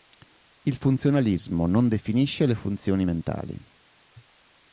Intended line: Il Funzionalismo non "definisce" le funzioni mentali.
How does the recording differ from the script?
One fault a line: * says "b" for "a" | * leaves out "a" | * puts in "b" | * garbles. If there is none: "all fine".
all fine